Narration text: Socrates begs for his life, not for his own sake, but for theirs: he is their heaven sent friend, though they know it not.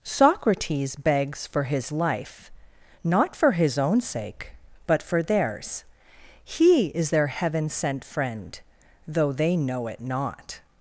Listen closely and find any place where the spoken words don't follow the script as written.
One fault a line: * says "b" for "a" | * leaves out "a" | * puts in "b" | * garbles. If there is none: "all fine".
all fine